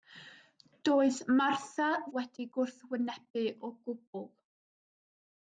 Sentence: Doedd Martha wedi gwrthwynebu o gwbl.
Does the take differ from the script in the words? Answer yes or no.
no